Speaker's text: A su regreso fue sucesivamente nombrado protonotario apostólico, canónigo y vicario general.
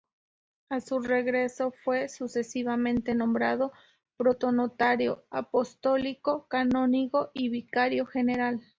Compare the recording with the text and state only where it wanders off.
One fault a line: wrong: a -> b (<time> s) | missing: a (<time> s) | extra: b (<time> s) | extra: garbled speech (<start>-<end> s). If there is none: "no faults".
no faults